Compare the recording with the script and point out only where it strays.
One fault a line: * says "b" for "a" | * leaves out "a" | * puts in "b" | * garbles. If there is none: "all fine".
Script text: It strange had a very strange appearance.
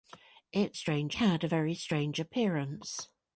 all fine